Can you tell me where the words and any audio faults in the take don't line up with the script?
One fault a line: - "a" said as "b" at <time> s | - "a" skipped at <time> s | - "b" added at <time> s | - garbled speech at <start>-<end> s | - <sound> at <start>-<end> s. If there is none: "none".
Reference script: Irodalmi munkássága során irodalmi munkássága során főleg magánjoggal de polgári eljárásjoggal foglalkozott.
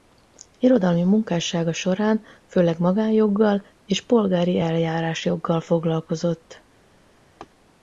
- "irodalmi munkássága során" skipped at 2.2 s
- "de" said as "és" at 3.9 s
- laugh at 7.4-7.5 s